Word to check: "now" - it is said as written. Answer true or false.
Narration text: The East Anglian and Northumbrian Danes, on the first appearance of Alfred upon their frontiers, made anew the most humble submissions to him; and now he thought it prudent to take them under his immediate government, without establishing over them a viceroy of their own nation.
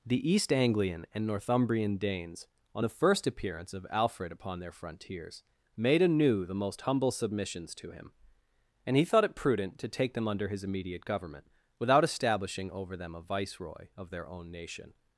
false